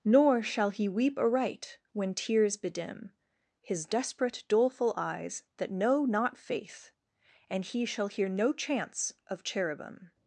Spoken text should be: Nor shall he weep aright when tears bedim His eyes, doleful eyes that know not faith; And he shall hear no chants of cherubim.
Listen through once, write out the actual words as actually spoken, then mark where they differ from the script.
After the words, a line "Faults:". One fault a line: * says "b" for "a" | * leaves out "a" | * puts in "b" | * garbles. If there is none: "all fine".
Nor shall he weep aright when tears bedim His desperate, doleful eyes that know not faith; And he shall hear no chants of cherubim.
Faults:
* says "desperate" for "eyes"